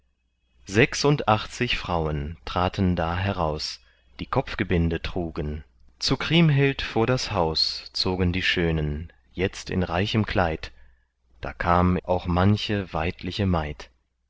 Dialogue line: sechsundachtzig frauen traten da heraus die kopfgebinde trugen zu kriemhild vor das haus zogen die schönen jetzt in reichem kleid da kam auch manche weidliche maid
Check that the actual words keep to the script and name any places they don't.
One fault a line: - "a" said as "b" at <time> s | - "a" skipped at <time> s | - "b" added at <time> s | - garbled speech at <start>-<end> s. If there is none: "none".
none